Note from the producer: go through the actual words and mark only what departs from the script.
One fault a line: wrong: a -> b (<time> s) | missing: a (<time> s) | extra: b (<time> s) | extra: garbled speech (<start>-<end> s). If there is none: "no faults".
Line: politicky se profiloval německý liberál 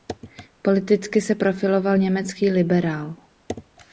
no faults